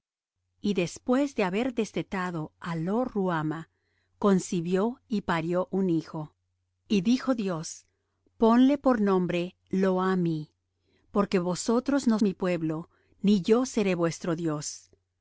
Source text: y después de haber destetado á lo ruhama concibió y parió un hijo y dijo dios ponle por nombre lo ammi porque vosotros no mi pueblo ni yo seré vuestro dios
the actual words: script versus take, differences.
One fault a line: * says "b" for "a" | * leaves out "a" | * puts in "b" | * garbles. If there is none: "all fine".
all fine